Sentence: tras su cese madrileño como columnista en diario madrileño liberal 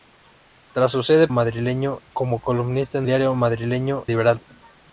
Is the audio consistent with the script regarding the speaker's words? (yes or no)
yes